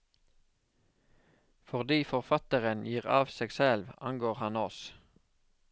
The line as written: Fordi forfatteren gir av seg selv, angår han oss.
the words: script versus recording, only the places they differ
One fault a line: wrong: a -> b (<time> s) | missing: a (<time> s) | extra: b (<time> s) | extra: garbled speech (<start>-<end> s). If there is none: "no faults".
no faults